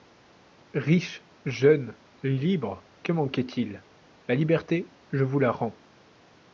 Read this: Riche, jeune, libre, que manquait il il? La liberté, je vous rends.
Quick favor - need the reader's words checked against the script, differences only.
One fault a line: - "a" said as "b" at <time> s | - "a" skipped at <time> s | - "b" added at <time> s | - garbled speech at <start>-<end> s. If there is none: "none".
- "il" skipped at 3.8 s
- "la" added at 5.4 s